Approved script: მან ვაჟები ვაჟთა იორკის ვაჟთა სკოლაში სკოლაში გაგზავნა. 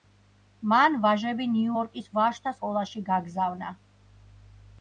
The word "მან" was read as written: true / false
true